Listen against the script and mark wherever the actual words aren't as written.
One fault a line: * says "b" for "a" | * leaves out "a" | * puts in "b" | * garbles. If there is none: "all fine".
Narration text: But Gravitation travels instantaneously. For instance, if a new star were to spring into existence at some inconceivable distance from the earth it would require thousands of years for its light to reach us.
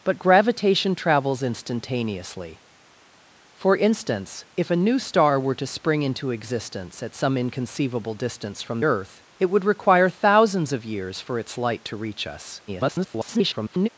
* leaves out "the"
* garbles